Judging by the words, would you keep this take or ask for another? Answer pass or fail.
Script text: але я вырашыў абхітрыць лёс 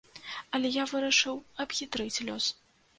pass